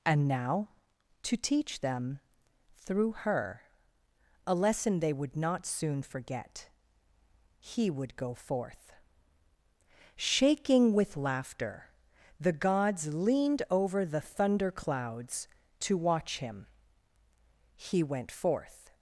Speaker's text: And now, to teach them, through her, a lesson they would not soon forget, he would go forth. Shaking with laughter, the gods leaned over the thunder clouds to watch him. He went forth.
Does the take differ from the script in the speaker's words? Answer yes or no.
no